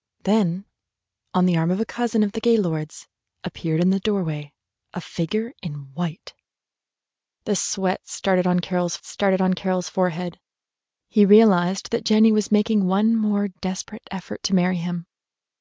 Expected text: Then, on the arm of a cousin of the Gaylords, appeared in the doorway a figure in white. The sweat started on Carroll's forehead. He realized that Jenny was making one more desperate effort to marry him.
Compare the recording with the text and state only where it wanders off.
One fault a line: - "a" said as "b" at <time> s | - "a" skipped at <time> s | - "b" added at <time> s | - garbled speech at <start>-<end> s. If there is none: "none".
- "started on Carroll's" added at 9.0 s